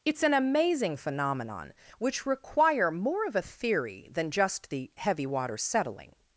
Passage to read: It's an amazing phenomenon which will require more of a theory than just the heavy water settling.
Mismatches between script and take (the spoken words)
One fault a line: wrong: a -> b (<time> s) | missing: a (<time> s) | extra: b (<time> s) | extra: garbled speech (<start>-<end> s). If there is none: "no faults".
missing: will (2.2 s)